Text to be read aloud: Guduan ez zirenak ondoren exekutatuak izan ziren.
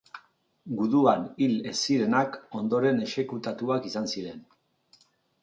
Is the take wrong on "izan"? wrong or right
right